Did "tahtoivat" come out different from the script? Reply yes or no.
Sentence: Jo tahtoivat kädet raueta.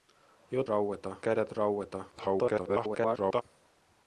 yes